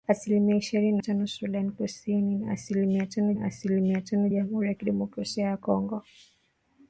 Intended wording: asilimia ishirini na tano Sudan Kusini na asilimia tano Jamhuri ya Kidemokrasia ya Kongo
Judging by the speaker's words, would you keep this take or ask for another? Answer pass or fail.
fail